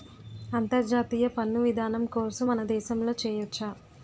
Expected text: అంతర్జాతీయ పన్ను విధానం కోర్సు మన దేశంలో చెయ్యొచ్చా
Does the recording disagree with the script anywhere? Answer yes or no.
no